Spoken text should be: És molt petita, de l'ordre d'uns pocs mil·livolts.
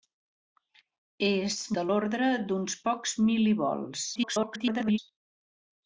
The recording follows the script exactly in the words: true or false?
false